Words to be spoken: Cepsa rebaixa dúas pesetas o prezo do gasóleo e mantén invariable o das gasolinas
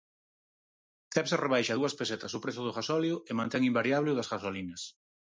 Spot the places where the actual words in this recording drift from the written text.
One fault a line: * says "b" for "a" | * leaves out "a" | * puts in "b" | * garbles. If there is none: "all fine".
all fine